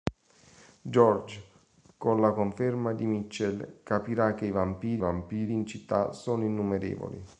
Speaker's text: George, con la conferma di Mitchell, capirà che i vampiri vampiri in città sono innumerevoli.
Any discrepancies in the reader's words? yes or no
no